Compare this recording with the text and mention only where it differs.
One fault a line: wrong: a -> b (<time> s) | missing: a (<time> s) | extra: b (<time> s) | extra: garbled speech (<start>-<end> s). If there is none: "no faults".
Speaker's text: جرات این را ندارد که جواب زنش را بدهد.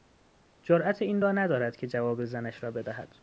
no faults